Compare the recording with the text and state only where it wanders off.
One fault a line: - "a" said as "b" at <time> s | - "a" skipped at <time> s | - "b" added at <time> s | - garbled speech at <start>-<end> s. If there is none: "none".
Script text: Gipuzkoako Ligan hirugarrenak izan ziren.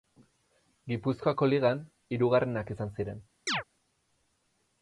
none